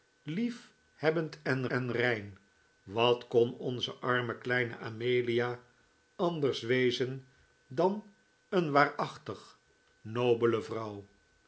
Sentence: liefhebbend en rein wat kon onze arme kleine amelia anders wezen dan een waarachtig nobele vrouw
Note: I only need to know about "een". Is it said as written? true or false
true